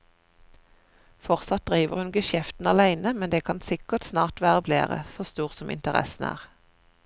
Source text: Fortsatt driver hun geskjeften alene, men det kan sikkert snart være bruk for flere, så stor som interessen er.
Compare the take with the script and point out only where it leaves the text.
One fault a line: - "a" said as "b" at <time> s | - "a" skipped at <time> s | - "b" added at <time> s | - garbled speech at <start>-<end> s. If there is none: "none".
- "bruk for" skipped at 4.7 s